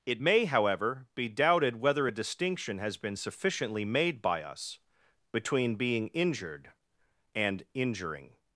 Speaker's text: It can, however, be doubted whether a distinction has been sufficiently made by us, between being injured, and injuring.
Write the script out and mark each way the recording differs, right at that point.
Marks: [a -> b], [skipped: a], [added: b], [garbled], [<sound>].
It [can, -> may] however, be doubted whether a distinction has been sufficiently made by us, between being injured, and injuring.